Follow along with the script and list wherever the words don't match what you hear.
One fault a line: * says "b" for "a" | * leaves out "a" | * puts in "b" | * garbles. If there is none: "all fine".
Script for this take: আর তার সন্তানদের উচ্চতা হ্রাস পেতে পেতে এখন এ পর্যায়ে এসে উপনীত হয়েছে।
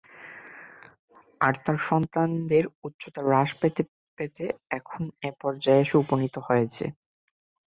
all fine